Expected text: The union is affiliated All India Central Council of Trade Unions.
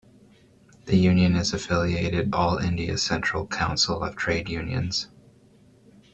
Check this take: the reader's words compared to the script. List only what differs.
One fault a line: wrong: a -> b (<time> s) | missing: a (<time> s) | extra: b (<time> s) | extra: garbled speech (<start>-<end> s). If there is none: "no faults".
no faults